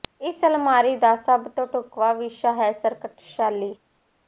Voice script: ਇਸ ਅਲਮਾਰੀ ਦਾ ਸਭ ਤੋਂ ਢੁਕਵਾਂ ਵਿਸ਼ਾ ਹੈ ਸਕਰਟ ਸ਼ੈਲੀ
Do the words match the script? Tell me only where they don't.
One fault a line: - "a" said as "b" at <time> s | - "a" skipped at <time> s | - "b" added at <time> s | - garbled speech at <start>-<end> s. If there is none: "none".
none